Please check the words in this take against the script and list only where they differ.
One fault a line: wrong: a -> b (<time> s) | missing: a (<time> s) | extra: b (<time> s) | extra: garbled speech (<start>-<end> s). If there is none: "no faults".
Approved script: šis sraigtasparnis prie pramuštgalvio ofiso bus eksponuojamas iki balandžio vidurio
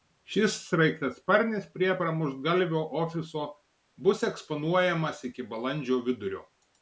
no faults